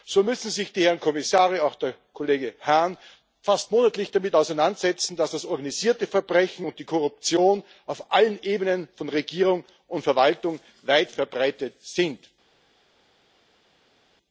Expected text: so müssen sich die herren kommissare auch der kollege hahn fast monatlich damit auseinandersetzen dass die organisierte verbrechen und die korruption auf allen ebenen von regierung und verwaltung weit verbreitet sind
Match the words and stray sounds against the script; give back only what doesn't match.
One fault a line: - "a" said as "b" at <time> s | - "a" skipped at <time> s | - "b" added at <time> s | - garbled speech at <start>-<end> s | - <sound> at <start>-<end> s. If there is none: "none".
- "die" said as "das" at 5.3 s